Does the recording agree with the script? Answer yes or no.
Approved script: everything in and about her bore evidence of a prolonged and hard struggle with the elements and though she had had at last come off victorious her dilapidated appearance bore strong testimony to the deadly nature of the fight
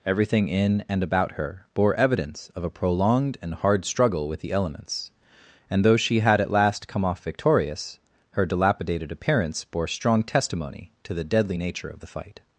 no